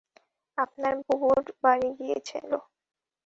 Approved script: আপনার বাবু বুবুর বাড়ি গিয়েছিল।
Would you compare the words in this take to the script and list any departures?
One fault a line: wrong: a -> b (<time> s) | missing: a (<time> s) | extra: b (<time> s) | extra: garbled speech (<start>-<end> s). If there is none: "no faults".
missing: বাবু (0.9 s)